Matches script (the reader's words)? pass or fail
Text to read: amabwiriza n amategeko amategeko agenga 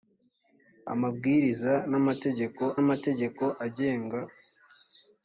pass